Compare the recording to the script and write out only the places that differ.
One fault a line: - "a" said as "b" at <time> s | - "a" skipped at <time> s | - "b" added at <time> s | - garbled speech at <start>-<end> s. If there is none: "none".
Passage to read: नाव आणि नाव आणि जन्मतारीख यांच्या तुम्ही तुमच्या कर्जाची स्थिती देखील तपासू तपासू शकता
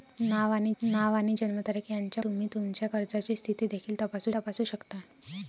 none